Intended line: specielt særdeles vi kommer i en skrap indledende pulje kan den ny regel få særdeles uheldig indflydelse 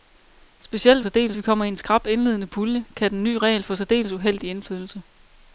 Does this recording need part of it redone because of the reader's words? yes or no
no